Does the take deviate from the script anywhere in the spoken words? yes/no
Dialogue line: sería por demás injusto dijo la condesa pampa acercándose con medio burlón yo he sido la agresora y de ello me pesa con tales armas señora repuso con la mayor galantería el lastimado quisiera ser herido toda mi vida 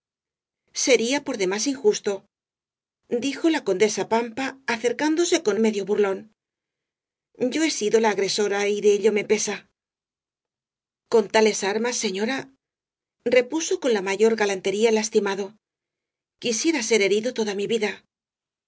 no